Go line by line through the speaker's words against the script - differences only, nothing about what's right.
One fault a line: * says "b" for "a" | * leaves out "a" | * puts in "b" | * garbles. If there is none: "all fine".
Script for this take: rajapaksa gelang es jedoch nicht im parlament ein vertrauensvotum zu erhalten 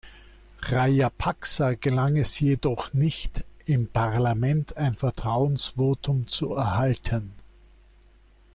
all fine